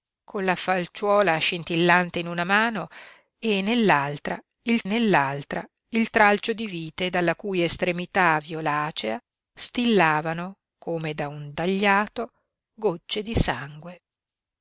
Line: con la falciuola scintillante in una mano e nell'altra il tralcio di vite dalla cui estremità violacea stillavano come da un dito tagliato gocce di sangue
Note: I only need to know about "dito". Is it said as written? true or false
false